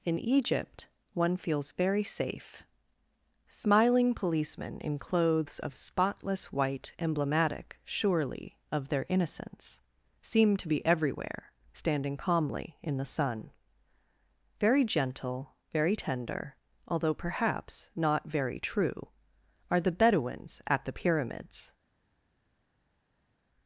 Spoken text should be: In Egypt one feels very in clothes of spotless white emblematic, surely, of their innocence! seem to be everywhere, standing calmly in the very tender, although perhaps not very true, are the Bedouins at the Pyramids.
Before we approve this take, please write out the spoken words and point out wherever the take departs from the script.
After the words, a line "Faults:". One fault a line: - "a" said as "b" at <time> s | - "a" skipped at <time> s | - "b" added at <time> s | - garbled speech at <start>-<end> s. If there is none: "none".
In Egypt one feels very safe. Smiling policemen in clothes of spotless white emblematic, surely, of their innocence! seem to be everywhere, standing calmly in the sun. Very gentle, very tender, although perhaps not very true, are the Bedouins at the Pyramids.
Faults:
- "safe Smiling policemen" added at 2.0 s
- "sun Very gentle" added at 13.0 s